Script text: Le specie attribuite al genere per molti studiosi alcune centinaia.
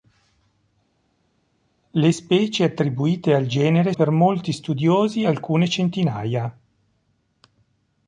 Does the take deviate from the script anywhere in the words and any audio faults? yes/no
no